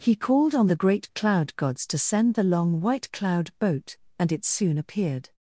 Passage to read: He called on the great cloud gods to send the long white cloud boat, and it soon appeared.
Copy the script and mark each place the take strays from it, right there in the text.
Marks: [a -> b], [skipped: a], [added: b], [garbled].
He called on the great cloud gods to send the long white cloud boat, and it soon appeared.